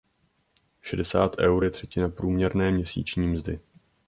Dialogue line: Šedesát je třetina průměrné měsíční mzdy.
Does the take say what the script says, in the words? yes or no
no